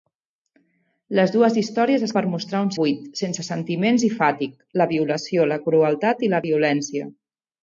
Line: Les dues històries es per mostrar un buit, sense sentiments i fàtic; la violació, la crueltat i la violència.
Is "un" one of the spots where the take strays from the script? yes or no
no